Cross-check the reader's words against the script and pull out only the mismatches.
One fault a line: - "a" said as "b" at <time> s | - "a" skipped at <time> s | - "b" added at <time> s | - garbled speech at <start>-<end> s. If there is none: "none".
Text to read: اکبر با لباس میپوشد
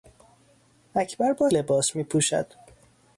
none